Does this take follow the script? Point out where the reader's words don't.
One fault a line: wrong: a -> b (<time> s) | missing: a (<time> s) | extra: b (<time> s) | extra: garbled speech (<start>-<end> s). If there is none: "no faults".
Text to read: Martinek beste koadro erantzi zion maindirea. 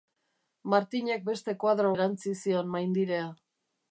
no faults